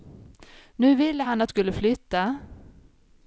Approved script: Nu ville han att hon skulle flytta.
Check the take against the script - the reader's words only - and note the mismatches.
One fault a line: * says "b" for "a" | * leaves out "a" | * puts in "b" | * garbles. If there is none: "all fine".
* leaves out "hon"